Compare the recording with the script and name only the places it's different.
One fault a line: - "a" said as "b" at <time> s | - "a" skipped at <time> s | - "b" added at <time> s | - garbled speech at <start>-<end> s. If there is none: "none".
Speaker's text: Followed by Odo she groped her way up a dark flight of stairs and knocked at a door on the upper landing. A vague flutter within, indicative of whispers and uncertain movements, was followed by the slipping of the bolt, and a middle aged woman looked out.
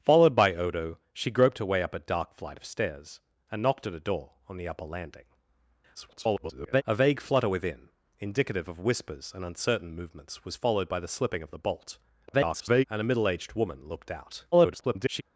- garbled speech at 5.9-6.8 s
- garbled speech at 12.3-12.8 s
- garbled speech at 14.5-15.2 s